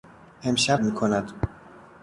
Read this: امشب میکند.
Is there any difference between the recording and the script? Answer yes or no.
no